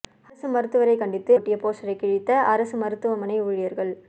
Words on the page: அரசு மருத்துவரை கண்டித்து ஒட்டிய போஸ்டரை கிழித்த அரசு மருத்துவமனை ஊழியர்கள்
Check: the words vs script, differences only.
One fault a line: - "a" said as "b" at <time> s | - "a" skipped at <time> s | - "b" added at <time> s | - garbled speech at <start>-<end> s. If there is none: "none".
none